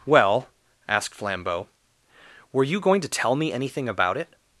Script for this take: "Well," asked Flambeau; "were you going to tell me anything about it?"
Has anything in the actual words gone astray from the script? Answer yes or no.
no